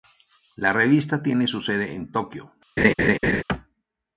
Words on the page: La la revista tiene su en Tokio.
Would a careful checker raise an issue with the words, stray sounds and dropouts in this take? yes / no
yes